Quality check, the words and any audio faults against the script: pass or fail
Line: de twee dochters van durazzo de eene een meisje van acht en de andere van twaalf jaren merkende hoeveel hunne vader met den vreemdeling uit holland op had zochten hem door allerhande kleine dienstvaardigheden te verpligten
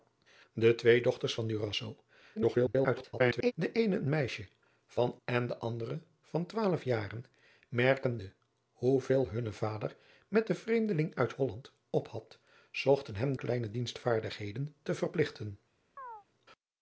fail